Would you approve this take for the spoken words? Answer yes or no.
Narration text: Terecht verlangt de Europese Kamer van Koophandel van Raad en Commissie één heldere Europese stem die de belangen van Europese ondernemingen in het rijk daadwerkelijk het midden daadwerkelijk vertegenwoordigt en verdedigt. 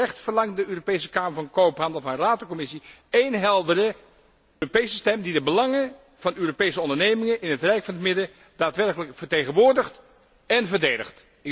no